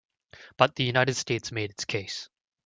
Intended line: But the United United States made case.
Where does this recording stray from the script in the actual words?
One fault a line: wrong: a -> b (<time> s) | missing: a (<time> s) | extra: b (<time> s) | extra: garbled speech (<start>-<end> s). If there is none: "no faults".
missing: United (1.1 s)
extra: its (1.7 s)